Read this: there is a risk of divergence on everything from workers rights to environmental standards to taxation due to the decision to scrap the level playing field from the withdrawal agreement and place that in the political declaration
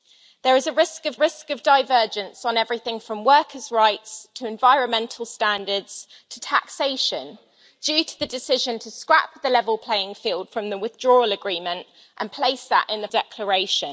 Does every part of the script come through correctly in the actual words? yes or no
no